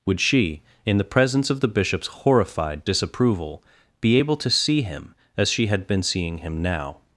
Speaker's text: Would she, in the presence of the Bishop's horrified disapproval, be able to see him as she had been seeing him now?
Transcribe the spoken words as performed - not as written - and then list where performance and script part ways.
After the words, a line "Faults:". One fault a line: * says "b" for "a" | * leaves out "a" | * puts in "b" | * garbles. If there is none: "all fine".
Would she, in the presence of the Bishop's horrified disapproval, be able to see him as she had been seeing him now?
Faults:
all fine